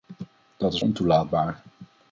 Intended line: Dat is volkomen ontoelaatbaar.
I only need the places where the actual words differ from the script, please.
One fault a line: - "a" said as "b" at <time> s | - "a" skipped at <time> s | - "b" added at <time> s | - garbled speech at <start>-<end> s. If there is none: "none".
- "volkomen" skipped at 0.8 s